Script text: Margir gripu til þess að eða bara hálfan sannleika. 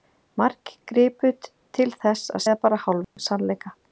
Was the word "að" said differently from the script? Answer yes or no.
no